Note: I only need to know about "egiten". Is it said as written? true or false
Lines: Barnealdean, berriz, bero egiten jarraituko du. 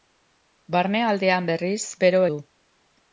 false